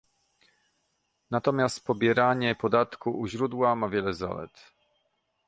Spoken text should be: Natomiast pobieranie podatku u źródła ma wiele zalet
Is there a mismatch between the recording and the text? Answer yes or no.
no